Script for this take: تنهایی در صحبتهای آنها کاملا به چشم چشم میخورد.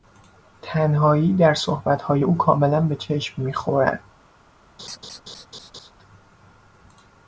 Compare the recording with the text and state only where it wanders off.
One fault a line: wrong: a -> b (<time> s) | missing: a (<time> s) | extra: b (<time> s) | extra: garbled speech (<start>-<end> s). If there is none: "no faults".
wrong: آنها -> او (2.2 s)
missing: چشم (3.4 s)